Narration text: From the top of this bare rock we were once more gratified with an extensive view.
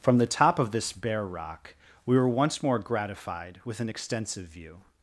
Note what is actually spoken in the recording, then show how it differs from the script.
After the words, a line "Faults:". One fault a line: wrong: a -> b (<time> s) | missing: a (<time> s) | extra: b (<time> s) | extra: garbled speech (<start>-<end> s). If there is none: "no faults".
From the top of this bare rock we were once more gratified with an extensive view.
Faults:
no faults